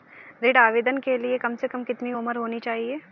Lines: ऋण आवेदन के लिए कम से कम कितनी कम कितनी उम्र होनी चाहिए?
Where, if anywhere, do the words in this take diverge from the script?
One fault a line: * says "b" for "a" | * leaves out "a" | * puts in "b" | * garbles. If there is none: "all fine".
* leaves out "कम कितनी"